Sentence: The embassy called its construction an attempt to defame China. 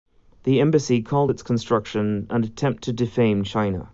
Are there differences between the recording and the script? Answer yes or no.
no